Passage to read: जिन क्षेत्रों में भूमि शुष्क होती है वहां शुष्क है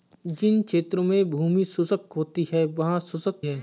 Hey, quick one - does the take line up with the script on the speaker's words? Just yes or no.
yes